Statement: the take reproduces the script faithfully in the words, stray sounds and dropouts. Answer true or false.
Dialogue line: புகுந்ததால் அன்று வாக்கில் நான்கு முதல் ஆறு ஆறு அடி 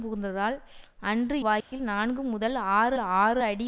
false